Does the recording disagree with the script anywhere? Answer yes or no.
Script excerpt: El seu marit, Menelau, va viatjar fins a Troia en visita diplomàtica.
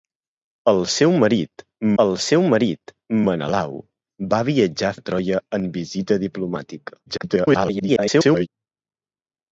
yes